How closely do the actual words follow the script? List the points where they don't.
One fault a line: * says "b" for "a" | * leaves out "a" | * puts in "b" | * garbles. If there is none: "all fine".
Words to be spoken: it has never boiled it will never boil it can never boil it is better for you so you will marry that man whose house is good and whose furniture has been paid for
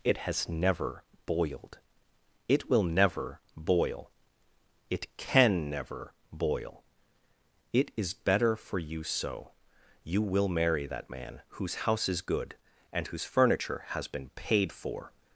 all fine